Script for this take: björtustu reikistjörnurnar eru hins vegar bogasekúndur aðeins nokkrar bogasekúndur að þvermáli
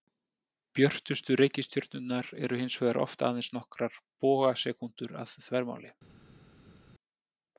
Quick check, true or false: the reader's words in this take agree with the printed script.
false